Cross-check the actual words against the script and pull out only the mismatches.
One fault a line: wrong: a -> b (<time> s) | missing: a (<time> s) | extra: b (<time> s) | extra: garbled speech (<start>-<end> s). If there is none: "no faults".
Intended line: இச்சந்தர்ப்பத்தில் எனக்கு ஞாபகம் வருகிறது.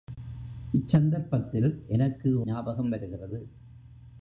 no faults